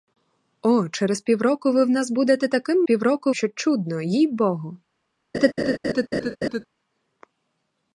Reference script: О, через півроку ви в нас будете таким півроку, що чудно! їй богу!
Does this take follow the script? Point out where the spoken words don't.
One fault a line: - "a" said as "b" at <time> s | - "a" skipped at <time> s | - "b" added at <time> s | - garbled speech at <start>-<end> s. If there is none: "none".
none